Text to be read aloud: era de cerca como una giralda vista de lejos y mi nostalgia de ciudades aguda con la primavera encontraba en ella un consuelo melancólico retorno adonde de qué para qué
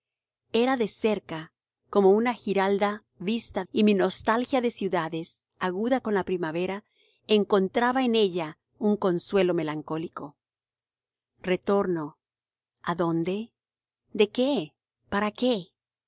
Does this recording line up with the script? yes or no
no